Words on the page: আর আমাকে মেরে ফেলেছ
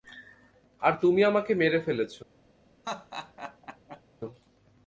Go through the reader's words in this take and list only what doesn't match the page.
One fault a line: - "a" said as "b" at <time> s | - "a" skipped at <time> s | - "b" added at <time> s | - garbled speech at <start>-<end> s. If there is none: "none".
- "তুমি" added at 1.0 s